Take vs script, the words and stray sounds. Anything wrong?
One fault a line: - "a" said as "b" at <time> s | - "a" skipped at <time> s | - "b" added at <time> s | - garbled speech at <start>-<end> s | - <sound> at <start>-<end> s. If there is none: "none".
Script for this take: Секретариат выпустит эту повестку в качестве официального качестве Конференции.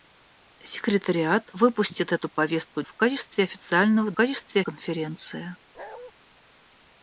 - bark at 5.7-6.1 s